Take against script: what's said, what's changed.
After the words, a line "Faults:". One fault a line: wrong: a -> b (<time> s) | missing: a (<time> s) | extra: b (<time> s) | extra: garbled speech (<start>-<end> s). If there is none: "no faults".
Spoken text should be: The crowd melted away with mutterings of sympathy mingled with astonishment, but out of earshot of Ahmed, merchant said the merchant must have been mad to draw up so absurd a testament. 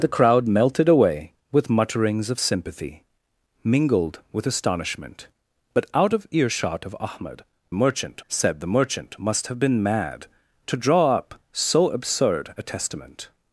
The crowd melted away with mutterings of sympathy mingled with astonishment, but out of earshot of Ahmed, merchant said the merchant must have been mad to draw up so absurd a testament.
Faults:
no faults